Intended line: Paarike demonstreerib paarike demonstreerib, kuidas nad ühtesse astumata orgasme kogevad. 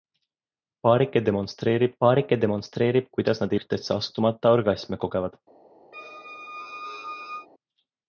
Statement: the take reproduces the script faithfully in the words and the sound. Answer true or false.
false